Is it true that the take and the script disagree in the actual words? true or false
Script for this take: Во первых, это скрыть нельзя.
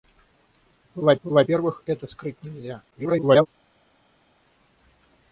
true